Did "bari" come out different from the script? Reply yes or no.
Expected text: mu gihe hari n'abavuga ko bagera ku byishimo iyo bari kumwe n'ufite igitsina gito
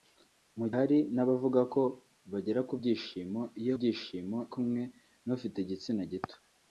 yes